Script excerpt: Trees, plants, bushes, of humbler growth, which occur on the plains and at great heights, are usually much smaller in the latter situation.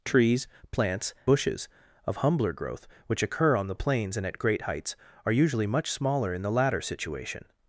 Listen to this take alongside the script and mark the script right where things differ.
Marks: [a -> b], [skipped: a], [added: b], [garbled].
Trees, plants, bushes, of humbler growth, which occur on the plains and at great heights, are usually much smaller in the latter situation.